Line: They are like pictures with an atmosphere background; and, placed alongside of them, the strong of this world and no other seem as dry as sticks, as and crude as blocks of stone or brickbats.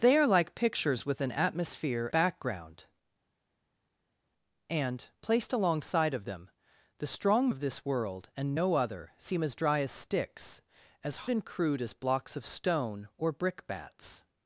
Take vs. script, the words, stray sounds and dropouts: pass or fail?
pass